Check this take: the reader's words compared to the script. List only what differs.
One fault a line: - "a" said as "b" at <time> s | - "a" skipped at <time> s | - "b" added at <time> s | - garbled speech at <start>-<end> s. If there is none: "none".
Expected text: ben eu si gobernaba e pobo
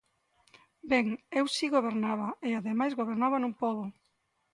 - "ademais gobernaba nun" added at 2.6 s